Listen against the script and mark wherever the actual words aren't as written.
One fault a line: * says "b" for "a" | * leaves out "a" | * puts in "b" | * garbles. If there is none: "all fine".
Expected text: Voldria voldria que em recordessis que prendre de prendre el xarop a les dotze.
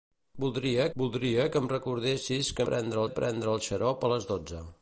all fine